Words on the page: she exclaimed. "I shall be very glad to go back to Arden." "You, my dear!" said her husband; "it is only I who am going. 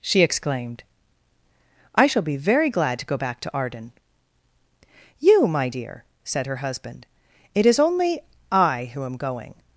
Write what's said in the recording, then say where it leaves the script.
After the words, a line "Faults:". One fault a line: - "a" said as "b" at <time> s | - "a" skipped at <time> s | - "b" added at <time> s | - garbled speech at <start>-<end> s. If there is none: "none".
she exclaimed. "I shall be very glad to go back to Arden." "You, my dear!" said her husband; "it is only I who am going.
Faults:
none